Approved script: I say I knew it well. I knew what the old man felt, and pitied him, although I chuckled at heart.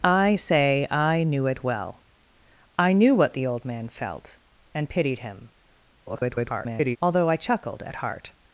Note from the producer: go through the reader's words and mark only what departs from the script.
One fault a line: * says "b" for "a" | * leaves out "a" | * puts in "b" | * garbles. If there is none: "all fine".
* garbles